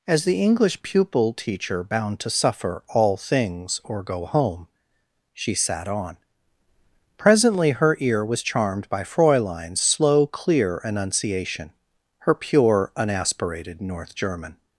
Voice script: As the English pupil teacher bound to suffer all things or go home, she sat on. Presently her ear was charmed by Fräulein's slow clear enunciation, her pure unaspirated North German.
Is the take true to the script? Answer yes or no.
yes